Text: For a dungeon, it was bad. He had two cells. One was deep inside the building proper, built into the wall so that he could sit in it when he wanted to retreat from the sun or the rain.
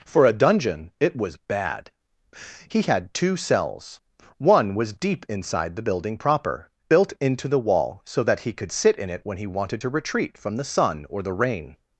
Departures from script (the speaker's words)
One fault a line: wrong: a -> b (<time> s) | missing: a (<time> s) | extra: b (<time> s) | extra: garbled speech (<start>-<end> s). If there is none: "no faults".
no faults